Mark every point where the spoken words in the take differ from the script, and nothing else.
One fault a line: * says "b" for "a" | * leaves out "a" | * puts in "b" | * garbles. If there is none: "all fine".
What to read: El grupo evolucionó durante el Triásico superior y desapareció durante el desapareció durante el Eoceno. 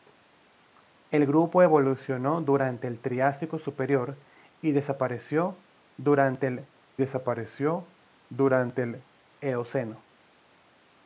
all fine